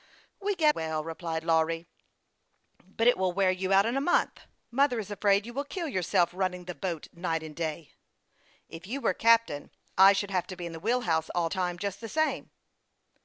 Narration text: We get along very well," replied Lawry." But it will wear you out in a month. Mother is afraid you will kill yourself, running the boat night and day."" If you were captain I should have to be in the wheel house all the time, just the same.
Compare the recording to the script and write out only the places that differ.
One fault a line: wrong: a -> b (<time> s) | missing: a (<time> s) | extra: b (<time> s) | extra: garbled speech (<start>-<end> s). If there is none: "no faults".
missing: along very (0.7 s)
missing: the (11.5 s)